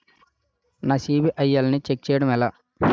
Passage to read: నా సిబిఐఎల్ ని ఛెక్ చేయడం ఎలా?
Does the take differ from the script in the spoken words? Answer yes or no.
no